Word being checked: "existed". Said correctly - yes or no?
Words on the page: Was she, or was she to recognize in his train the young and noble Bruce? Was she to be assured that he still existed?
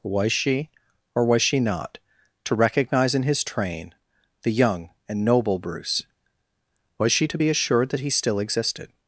yes